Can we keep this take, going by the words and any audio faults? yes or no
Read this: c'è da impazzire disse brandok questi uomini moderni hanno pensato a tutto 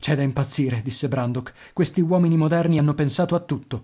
yes